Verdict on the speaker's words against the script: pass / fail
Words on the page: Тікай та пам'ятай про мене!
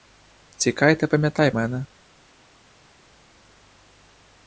fail